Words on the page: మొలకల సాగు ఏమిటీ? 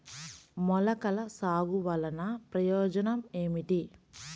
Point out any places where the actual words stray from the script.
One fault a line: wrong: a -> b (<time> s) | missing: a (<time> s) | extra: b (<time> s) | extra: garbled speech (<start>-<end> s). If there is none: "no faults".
extra: వలన ప్రయోజనం (1.8 s)